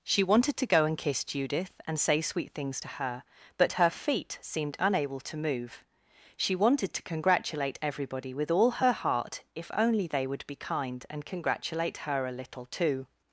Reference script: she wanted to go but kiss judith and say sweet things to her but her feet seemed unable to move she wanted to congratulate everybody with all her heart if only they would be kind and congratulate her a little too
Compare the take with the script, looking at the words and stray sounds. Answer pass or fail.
fail